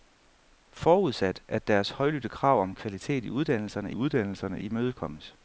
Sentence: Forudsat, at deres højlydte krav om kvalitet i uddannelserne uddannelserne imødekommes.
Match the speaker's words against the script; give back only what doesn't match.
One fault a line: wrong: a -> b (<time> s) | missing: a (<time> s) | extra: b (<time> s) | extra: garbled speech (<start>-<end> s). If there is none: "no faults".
no faults